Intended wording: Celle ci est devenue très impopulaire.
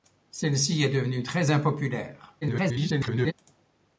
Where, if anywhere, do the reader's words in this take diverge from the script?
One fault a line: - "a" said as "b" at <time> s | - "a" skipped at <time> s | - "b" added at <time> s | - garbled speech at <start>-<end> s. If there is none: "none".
- garbled speech at 2.4-3.3 s